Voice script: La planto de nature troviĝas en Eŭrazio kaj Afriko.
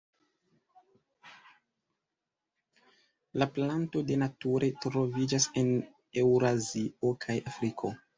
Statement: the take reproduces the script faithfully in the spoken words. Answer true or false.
true